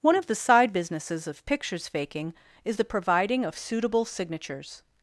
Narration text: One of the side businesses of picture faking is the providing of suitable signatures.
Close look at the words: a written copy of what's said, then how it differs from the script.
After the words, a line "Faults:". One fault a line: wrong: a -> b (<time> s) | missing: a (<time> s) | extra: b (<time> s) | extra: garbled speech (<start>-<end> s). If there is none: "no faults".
One of the side businesses of pictures faking is the providing of suitable signatures.
Faults:
wrong: picture -> pictures (1.4 s)